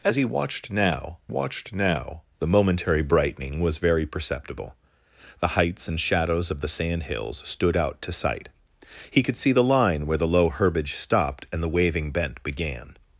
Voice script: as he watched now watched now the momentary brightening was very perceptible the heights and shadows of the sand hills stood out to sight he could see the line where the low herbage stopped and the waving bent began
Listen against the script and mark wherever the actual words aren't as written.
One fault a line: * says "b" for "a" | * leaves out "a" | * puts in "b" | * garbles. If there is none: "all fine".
all fine